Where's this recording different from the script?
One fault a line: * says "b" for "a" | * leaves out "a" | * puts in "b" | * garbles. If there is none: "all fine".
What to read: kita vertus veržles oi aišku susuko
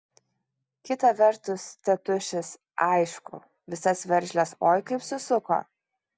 * puts in "tėtušis aišku visas"
* says "kaip" for "aišku"